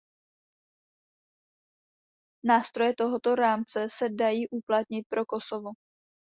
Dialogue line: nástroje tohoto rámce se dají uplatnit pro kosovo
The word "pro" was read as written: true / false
true